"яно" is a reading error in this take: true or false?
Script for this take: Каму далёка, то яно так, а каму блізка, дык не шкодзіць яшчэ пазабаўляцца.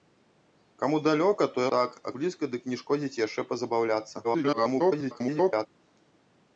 true